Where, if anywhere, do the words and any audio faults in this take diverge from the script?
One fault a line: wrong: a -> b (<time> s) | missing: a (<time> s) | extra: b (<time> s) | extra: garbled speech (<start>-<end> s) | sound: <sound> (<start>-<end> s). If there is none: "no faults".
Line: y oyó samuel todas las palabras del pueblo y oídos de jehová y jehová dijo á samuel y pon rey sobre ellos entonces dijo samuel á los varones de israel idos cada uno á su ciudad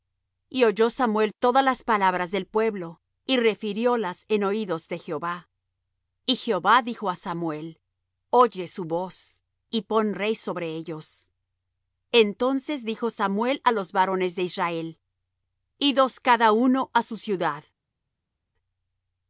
extra: refiriólas en (3.4 s)
extra: oye su voz (8.3 s)